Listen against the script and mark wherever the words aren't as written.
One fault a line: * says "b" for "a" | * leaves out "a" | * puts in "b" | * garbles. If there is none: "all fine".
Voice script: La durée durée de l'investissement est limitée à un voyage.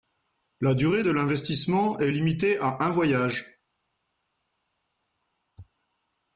* leaves out "durée"